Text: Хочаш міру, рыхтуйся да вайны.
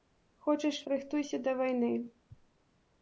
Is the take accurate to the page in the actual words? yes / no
no